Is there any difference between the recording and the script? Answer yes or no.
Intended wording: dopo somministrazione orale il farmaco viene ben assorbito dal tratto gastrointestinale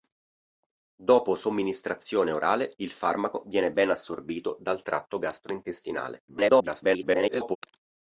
yes